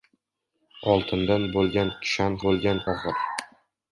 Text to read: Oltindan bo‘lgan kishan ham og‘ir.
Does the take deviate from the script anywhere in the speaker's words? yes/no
yes